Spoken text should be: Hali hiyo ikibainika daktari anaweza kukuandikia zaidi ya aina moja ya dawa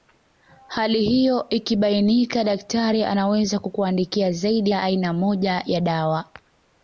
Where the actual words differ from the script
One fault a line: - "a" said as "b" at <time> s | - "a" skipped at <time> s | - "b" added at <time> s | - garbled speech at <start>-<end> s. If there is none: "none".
none